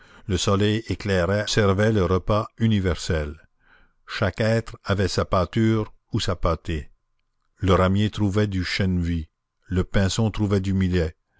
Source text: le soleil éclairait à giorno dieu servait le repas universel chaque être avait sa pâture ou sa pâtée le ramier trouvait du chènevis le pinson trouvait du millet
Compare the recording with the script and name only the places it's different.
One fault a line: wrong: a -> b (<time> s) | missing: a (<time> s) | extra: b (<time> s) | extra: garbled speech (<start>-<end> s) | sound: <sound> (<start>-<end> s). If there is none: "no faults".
missing: à giorno dieu (1.4 s)